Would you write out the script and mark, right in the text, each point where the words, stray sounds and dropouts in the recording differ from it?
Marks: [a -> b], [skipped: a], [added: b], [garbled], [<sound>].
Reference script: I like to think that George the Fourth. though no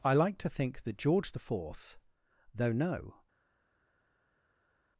I like to think that George the Fourth. though no